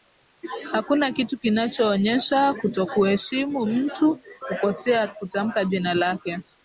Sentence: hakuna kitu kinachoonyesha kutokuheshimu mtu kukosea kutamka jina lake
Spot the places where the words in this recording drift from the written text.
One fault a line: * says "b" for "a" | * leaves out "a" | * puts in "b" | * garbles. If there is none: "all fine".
all fine